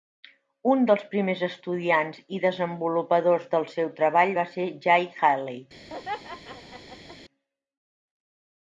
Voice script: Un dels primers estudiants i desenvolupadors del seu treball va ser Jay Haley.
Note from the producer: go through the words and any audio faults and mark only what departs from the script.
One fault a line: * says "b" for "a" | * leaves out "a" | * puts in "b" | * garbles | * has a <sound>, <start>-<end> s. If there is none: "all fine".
* has a laugh, 5.9-7.2 s